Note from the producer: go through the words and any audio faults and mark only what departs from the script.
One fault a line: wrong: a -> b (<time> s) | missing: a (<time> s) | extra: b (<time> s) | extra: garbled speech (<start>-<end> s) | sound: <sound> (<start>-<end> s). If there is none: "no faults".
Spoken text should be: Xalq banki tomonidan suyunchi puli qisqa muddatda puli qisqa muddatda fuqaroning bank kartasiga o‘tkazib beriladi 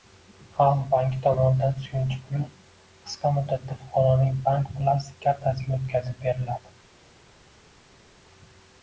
missing: puli qisqa muddatda (3.8 s)
extra: plastik (4.8 s)